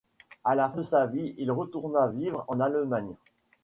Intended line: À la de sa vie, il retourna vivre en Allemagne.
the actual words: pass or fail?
pass